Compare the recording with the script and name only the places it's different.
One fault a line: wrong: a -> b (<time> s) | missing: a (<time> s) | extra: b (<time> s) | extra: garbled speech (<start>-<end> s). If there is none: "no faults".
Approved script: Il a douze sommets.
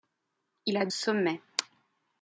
missing: douze (0.9 s)